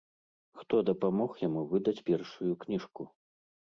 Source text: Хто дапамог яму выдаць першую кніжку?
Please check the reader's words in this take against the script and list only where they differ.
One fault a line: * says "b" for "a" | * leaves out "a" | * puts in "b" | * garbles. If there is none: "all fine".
all fine